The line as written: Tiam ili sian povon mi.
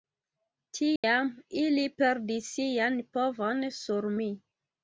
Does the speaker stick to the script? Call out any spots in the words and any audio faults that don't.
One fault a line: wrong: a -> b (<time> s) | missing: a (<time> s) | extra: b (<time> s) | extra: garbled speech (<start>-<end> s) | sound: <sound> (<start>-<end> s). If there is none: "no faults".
sound: dropout (1.0-1.0 s)
extra: perdis (2.0 s)
extra: sur (3.8 s)